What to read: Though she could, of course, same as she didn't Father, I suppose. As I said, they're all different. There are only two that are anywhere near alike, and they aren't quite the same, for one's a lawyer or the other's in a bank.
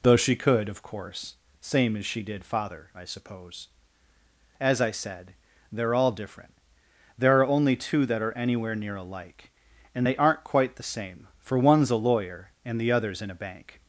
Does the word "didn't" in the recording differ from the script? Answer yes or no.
yes